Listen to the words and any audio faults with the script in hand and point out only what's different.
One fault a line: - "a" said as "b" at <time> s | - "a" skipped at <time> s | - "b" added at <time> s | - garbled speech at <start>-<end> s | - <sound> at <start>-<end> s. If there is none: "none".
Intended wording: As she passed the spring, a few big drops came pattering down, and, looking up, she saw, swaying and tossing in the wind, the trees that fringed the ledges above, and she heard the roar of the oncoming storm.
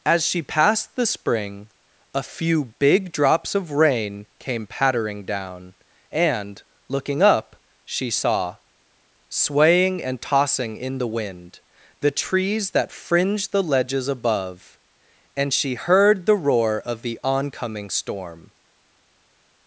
- "of rain" added at 3.5 s